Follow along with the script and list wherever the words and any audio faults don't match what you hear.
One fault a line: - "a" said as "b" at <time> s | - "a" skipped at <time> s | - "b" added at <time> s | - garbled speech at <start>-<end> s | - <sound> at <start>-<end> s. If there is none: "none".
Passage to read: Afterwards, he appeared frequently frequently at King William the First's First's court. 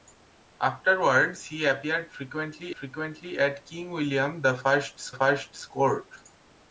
none